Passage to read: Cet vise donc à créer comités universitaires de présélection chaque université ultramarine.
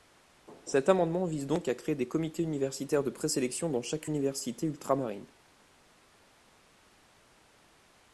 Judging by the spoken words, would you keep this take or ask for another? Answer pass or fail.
fail